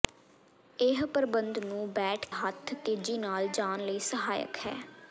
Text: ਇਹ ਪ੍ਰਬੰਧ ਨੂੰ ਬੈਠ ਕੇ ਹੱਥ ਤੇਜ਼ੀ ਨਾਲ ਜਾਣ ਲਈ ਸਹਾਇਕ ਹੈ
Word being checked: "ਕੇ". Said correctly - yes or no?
no